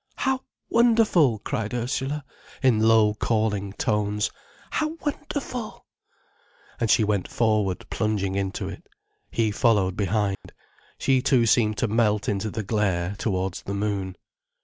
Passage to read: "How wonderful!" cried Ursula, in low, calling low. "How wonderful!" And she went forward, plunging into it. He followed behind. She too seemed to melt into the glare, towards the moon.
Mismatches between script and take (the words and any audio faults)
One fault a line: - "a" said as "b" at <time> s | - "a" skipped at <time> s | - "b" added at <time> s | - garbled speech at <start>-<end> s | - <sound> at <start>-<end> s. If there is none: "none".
- "low" said as "tones" at 3.7 s
- dropout at 10.3-10.4 s